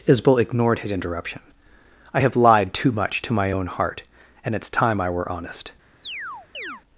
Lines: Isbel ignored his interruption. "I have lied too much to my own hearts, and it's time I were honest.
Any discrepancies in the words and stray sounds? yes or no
yes